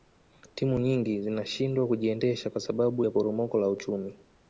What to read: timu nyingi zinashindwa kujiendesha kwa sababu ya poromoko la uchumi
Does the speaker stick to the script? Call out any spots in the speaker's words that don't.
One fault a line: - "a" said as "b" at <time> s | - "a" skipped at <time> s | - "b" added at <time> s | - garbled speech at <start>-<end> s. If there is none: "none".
none